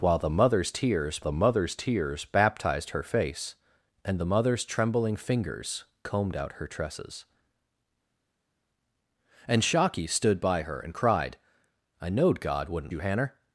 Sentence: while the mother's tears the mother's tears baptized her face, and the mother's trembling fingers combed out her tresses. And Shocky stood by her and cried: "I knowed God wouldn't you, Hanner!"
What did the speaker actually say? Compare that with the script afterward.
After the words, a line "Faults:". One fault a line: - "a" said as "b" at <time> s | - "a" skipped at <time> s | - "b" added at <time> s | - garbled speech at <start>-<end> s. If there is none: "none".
while the mother's tears the mother's tears baptized her face, and the mother's trembling fingers combed out her tresses. And Shocky stood by her and cried: "I knowed God wouldn't you, Hanner!"
Faults:
none